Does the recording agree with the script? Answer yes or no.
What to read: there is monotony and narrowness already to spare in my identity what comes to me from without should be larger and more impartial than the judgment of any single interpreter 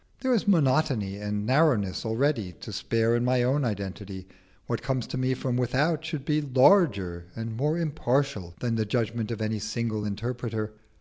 no